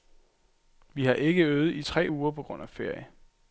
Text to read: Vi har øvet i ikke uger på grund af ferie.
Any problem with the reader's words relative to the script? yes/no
yes